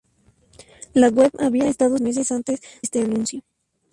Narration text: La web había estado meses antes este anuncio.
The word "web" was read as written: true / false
true